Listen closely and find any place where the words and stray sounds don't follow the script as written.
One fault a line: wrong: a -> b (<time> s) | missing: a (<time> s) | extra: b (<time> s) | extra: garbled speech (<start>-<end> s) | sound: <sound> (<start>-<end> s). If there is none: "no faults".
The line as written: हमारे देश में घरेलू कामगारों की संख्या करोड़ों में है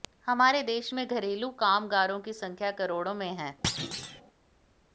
sound: thud (3.6-4.2 s)